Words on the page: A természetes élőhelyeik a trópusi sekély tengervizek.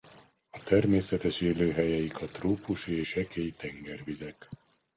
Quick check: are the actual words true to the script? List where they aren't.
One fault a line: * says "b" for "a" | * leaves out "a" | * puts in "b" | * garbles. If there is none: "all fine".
all fine